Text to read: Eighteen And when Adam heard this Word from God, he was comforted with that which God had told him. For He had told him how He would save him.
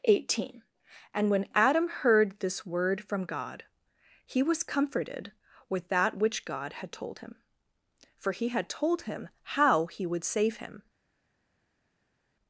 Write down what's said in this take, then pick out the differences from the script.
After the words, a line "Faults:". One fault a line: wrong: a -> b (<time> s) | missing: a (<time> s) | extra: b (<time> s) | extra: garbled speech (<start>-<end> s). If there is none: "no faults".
Eighteen And when Adam heard this Word from God, he was comforted with that which God had told him. For He had told him how He would save him.
Faults:
no faults